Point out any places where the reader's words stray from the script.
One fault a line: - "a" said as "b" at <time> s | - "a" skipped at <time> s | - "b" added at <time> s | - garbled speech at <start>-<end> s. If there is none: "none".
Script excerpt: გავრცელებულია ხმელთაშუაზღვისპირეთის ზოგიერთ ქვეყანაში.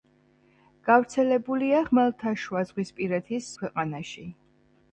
- "ზოგიერთ" skipped at 3.5 s